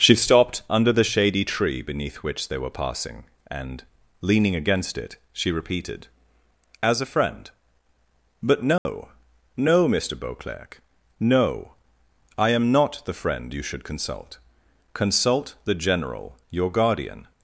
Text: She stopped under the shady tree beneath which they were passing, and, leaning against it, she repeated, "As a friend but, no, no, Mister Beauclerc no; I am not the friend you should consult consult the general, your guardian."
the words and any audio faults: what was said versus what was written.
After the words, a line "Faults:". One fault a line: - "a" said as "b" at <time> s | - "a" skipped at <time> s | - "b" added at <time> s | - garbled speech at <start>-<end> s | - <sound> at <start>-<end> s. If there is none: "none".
She stopped under the shady tree beneath which they were passing, and, leaning against it, she repeated, "As a friend but, no, no, Mister Beauclerc no; I am not the friend you should consult consult the general, your guardian."
Faults:
- dropout at 8.8-8.9 s